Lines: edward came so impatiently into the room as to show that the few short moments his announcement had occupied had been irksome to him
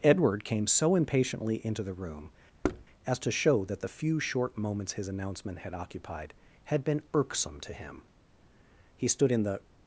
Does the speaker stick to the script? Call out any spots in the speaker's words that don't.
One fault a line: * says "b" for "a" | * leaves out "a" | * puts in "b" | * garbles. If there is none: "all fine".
* puts in "he stood in the"